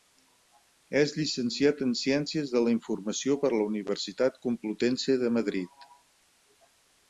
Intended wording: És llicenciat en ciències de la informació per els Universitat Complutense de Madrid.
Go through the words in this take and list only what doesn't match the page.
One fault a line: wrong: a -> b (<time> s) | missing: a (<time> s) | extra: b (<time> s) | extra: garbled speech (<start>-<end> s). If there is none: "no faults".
wrong: els -> la (3.6 s)